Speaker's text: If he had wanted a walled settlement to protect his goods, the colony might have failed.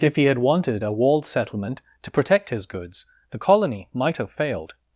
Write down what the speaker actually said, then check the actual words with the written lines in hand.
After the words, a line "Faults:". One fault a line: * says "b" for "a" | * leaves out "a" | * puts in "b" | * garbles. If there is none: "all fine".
If he had wanted a walled settlement to protect his goods, the colony might have failed.
Faults:
all fine